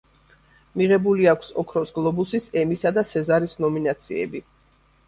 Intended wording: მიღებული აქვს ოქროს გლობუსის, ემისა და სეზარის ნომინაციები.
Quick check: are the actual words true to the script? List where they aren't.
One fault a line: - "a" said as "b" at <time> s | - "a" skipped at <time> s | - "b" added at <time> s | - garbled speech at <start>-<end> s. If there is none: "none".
none